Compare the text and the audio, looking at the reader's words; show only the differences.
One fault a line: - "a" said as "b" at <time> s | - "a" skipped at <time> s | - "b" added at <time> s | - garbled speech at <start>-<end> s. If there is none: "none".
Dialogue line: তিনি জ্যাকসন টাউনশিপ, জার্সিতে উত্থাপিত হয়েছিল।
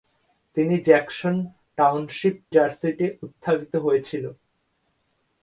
none